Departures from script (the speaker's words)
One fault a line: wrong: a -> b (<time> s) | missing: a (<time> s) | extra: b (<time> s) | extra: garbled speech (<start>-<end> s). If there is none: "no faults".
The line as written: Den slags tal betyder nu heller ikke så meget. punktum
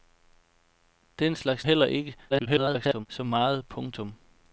missing: tal betyder nu (1.6 s)
extra: garbled speech (2.3-3.1 s)